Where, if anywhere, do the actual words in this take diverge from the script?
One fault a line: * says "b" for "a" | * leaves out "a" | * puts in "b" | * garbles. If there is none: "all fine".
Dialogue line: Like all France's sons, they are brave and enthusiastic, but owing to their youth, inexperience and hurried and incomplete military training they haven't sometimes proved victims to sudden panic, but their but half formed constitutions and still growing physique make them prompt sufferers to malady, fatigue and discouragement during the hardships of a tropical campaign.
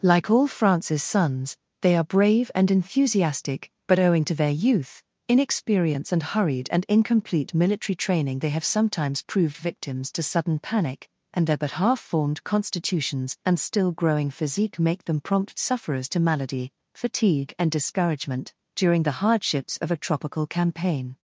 * says "have" for "haven't"
* says "and" for "but"